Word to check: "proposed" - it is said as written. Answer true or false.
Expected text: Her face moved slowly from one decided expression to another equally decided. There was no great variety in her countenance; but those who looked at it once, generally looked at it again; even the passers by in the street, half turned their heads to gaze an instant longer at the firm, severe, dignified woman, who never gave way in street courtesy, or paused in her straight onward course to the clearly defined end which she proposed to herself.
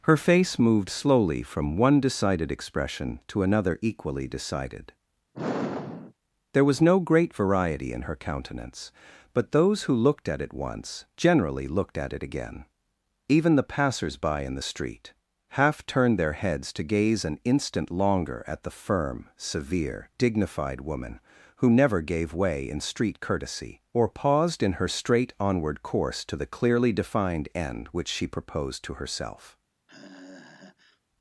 true